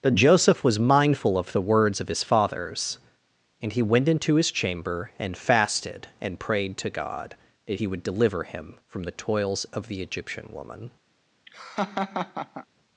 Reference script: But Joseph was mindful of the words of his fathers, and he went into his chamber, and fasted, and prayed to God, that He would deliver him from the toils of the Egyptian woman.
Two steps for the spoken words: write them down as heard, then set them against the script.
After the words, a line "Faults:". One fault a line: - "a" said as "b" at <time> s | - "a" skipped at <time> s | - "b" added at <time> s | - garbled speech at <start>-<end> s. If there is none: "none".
But Joseph was mindful of the words of his fathers, and he went into his chamber, and fasted, and prayed to God, that He would deliver him from the toils of the Egyptian woman.
Faults:
none